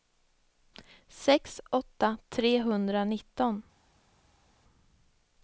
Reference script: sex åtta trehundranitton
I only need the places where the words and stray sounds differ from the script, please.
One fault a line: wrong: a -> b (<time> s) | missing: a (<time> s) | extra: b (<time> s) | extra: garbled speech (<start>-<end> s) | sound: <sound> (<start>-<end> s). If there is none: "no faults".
no faults